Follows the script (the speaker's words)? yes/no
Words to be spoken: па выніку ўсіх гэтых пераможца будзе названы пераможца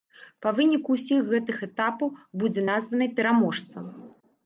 no